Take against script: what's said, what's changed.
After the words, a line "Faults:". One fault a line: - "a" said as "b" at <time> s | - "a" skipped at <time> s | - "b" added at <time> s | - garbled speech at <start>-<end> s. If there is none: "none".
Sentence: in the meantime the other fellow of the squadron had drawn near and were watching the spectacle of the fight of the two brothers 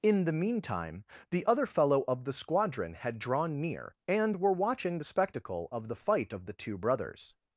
in the meantime the other fellow of the squadron had drawn near and were watching the spectacle of the fight of the two brothers
Faults:
none